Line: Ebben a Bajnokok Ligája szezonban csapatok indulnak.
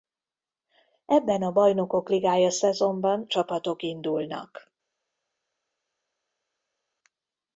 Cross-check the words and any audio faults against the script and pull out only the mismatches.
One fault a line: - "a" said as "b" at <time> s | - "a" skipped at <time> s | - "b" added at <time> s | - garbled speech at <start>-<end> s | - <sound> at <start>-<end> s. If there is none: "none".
none